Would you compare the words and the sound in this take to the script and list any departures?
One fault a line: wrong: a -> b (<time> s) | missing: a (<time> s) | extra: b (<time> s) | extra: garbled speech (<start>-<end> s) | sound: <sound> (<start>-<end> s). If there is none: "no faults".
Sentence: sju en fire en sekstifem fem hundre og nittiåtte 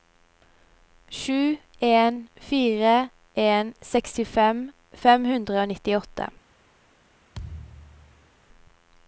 sound: thud (7.3-8.3 s)